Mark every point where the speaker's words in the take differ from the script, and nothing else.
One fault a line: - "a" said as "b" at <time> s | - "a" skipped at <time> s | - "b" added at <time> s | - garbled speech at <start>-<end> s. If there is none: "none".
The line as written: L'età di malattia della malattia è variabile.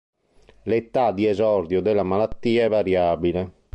- "malattia" said as "esordio" at 1.3 s